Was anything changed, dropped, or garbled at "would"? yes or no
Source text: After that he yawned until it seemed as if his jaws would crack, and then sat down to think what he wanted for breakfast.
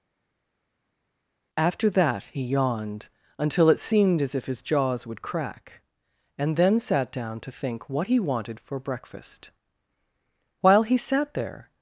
no